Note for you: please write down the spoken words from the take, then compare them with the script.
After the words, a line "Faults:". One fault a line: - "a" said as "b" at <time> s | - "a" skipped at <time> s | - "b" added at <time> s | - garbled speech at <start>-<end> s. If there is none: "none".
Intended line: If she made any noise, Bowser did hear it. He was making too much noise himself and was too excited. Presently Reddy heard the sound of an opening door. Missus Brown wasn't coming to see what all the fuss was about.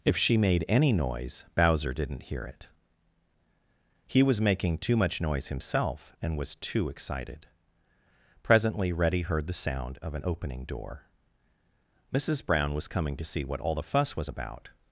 If she made any noise, Bowser didn't hear it. He was making too much noise himself and was too excited. Presently Reddy heard the sound of an opening door. Missus Brown was coming to see what all the fuss was about.
Faults:
- "did" said as "didn't" at 1.9 s
- "wasn't" said as "was" at 12.7 s